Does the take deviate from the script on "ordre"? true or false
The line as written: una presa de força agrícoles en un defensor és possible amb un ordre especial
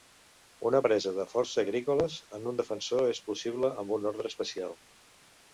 false